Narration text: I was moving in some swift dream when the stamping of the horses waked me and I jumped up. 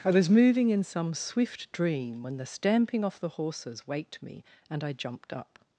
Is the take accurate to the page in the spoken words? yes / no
no